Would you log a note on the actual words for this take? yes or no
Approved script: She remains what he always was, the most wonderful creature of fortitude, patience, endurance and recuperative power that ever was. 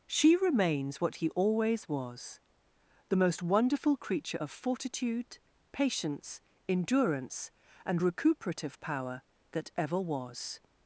no